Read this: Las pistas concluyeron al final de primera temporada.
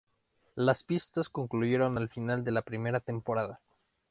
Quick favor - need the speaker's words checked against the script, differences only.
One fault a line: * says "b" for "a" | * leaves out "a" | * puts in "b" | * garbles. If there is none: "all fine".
* puts in "la"